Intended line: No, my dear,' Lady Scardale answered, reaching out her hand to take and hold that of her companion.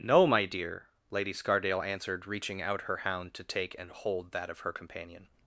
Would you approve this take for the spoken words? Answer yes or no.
no